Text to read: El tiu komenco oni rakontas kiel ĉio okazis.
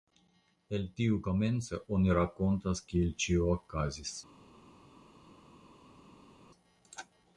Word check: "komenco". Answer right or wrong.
right